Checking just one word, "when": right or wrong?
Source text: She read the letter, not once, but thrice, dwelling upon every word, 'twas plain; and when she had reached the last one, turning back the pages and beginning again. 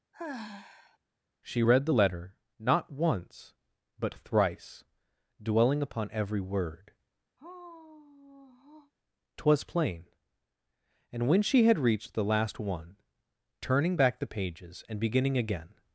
right